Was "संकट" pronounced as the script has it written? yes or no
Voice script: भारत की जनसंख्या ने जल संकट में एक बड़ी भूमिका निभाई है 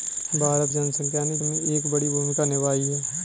no